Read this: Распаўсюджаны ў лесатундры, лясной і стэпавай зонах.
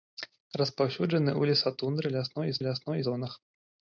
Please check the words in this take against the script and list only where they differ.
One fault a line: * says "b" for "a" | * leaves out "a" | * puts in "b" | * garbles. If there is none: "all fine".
* says "лясной" for "стэпавай"